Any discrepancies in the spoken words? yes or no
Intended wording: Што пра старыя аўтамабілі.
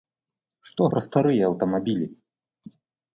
no